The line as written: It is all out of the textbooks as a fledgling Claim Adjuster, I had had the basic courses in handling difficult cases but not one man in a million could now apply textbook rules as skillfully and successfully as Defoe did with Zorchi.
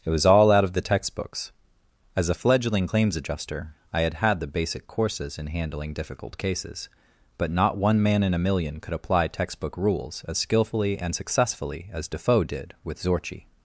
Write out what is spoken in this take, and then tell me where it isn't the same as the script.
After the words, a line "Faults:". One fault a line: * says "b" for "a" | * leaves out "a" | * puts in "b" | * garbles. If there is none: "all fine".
It was all out of the textbooks as a fledgling Claims Adjuster, I had had the basic courses in handling difficult cases but not one man in a million could apply textbook rules as skillfully and successfully as Defoe did with Zorchi.
Faults:
* says "was" for "is"
* says "Claims" for "Claim"
* leaves out "now"